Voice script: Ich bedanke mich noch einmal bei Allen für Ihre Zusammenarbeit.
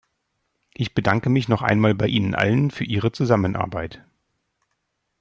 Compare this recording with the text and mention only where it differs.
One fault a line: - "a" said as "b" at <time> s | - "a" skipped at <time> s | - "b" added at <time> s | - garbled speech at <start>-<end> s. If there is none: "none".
- "Ihnen" added at 2.1 s